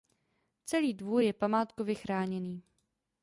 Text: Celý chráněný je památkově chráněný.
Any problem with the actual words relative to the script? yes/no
yes